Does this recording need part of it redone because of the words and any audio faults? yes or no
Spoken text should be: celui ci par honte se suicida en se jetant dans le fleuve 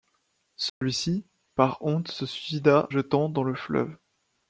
yes